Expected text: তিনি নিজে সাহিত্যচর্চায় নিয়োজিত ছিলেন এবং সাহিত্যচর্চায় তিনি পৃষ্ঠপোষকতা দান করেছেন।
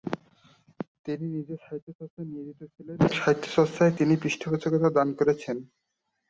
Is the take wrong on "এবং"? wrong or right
wrong